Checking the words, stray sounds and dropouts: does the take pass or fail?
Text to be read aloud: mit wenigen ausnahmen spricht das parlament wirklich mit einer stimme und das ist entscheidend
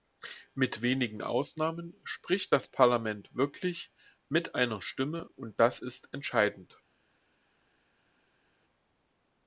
pass